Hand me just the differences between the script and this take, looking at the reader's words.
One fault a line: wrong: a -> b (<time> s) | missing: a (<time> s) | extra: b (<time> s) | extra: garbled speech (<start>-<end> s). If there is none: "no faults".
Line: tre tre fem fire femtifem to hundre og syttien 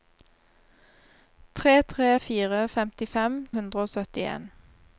missing: fem (2.1 s)
missing: to (3.4 s)